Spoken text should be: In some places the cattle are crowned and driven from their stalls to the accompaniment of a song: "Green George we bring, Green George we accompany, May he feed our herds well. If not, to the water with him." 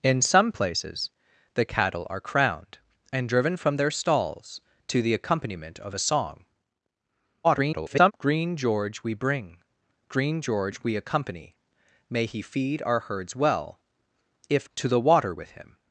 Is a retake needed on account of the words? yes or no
yes